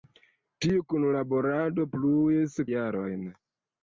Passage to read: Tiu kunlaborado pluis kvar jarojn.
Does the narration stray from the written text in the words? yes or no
yes